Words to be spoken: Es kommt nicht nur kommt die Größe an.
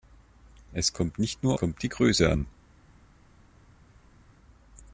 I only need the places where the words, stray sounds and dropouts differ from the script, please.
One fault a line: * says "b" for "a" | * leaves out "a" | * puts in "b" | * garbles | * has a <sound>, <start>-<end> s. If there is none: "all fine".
all fine